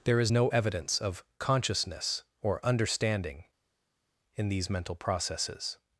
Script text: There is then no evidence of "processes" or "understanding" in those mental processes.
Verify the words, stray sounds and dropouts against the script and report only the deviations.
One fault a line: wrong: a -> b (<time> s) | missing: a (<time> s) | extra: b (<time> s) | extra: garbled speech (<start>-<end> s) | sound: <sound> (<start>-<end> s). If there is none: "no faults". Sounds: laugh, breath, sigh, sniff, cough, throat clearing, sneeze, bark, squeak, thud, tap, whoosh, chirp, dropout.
missing: then (0.3 s)
wrong: processes -> consciousness (1.4 s)
wrong: those -> these (4.5 s)